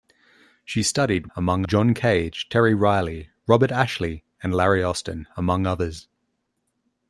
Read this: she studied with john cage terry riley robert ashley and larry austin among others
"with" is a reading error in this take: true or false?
true